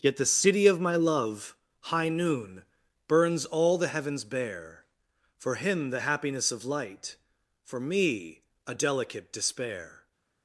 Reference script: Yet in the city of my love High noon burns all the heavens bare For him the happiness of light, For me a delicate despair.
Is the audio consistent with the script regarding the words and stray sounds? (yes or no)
no